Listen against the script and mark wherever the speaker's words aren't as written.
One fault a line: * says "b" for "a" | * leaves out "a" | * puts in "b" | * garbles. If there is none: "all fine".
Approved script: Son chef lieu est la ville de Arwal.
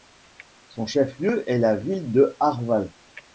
all fine